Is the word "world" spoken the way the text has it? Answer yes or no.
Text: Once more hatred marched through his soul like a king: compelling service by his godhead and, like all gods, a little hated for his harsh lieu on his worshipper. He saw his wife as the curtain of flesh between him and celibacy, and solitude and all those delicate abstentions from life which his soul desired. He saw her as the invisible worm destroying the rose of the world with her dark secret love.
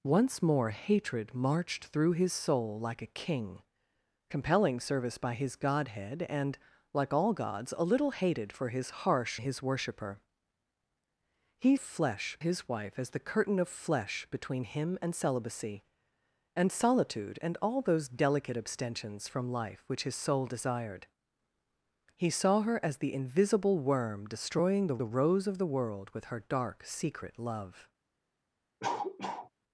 yes